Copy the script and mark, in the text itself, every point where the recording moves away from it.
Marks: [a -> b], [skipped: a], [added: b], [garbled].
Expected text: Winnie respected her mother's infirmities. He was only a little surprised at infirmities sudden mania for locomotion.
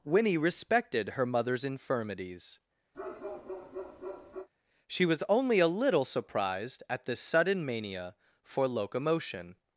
Winnie respected her mother's infirmities. [He -> She] was only a little surprised at [infirmities -> this] sudden mania for locomotion.